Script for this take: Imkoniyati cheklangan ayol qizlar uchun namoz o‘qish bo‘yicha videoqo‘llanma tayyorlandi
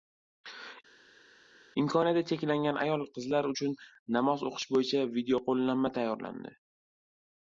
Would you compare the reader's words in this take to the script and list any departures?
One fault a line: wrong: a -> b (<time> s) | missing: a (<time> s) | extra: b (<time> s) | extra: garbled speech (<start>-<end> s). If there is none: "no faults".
no faults